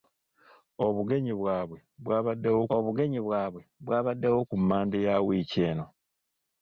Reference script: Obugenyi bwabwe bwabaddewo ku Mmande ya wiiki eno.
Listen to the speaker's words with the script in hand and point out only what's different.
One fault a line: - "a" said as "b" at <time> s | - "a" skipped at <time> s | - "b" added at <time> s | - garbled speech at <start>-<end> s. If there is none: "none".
- "obugenyi bwabwe bwabaddewo" added at 2.7 s